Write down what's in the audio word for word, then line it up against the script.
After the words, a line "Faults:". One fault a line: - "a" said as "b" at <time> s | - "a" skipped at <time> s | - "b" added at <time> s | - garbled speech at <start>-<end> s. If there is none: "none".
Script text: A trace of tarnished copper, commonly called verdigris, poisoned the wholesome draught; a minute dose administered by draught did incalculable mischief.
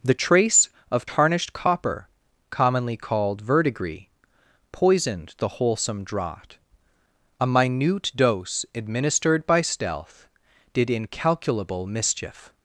The trace of tarnished copper, commonly called verdigris, poisoned the wholesome draught; a minute dose administered by stealth did incalculable mischief.
Faults:
- "A" said as "The" at 0.0 s
- "draught" said as "stealth" at 9.6 s